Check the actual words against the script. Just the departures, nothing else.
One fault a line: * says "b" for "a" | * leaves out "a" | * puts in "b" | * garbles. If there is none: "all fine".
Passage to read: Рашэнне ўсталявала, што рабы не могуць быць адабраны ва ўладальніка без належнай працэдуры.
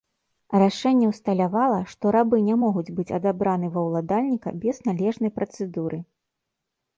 all fine